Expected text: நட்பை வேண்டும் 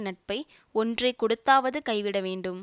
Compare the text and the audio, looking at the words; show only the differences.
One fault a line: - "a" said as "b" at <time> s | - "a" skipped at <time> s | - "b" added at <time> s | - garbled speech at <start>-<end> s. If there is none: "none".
- "ஒன்றை கொடுத்தாவது கைவிட" added at 0.7 s